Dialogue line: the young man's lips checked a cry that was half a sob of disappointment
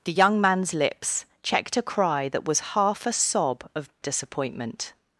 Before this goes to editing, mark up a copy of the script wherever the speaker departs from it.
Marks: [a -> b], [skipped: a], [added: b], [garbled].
the young man's lips checked a cry that was half a sob of disappointment